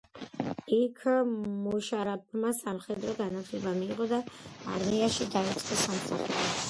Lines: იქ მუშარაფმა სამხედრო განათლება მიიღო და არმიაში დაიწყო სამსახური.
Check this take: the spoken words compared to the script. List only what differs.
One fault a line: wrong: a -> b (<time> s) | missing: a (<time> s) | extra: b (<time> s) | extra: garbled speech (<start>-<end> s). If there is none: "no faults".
no faults